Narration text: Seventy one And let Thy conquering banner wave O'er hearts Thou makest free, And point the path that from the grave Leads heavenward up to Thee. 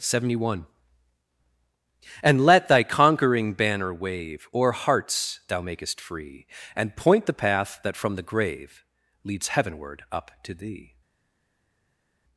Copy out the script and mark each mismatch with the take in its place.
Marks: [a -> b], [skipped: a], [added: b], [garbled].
Seventy one And let Thy conquering banner wave O'er hearts Thou makest free, And point the path that from the grave Leads heavenward up to Thee.